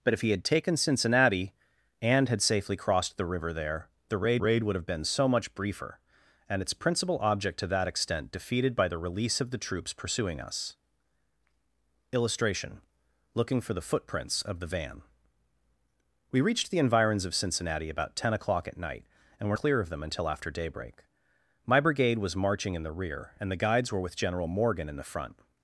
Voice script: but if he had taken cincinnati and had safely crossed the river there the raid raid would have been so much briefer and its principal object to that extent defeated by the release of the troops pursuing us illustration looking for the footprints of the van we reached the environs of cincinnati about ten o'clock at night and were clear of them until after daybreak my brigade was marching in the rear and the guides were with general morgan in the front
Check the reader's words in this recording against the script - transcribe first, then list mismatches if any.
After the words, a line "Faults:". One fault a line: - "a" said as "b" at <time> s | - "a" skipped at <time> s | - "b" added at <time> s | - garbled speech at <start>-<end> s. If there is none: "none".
but if he had taken cincinnati and had safely crossed the river there the raid raid would have been so much briefer and its principal object to that extent defeated by the release of the troops pursuing us illustration looking for the footprints of the van we reached the environs of cincinnati about ten o'clock at night and were clear of them until after daybreak my brigade was marching in the rear and the guides were with general morgan in the front
Faults:
none